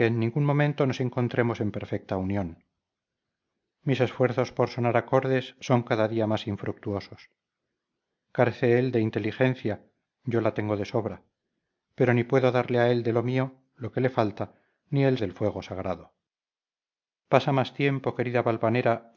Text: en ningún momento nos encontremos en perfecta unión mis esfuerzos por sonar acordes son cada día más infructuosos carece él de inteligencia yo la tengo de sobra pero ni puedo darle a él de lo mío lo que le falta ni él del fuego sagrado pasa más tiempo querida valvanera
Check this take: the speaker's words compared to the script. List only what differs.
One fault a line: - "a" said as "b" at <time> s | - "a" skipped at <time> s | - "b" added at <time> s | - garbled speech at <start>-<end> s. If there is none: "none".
none